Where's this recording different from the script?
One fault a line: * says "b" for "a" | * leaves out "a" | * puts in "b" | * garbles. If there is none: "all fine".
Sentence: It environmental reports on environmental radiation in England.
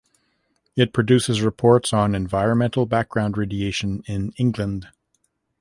* says "produces" for "environmental"
* puts in "background"